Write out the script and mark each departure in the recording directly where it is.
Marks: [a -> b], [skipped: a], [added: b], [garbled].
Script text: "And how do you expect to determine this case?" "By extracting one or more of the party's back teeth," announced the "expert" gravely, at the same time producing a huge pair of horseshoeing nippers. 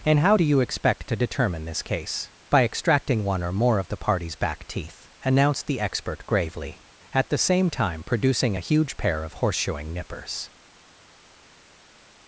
"And how do you expect to determine this case?" "By extracting one or more of the party's back teeth," announced the "expert" gravely, at the same time producing a huge pair of horseshoeing nippers.